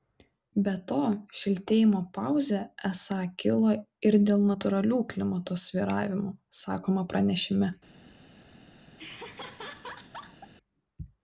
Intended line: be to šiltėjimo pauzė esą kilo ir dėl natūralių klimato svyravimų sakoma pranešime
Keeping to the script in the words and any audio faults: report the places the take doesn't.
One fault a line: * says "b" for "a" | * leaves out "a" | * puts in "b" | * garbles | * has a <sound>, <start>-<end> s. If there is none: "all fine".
* has a laugh, 9.0-10.5 s